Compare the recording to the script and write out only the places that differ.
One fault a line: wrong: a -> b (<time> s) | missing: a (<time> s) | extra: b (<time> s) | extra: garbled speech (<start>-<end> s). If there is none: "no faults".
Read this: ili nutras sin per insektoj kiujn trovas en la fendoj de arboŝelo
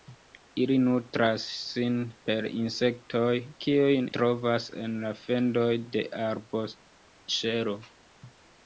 no faults